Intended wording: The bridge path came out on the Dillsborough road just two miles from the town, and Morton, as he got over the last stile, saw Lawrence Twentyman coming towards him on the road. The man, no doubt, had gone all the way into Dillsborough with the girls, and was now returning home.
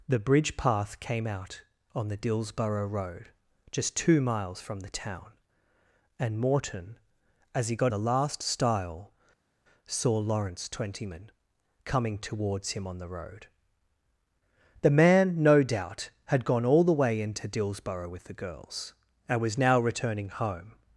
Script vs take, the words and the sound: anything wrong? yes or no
yes